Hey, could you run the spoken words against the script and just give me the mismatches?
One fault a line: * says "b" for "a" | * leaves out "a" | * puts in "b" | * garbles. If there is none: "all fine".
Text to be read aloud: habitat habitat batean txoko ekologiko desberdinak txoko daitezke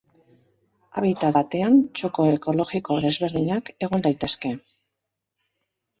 * leaves out "habitat"
* says "egon" for "txoko"